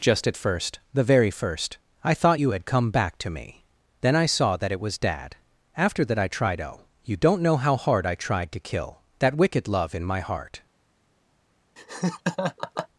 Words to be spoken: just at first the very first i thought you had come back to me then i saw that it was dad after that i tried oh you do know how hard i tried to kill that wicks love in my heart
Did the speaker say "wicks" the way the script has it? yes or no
no